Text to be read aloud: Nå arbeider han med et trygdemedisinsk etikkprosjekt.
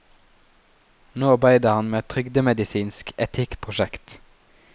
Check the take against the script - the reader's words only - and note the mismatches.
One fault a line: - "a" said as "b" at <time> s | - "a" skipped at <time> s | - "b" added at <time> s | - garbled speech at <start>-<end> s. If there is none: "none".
none